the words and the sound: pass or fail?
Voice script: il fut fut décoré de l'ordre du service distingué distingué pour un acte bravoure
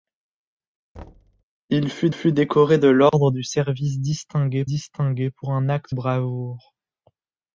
fail